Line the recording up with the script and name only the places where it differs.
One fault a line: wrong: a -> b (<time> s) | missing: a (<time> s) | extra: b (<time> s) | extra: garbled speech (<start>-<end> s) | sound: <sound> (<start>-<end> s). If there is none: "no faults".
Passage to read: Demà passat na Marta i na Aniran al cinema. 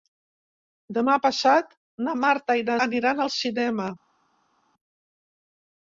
no faults